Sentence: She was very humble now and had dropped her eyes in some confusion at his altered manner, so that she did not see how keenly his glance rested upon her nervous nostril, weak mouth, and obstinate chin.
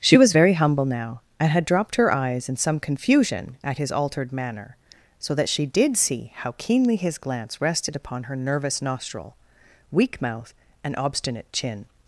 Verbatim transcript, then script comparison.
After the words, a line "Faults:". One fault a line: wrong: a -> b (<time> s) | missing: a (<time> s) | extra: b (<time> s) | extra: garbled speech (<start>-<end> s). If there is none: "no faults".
She was very humble now and had dropped her eyes in some confusion at his altered manner, so that she did see how keenly his glance rested upon her nervous nostril, weak mouth, and obstinate chin.
Faults:
missing: not (6.0 s)